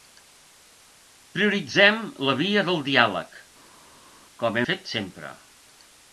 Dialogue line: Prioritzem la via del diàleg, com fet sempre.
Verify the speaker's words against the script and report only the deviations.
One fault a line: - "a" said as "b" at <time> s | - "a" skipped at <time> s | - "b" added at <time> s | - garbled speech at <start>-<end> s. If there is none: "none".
none